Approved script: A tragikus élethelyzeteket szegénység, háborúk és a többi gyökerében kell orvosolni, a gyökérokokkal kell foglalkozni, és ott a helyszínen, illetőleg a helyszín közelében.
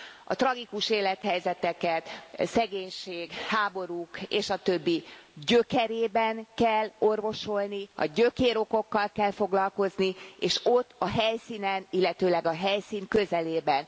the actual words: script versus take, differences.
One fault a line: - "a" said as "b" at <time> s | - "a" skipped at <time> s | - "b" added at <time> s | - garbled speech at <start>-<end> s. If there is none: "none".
none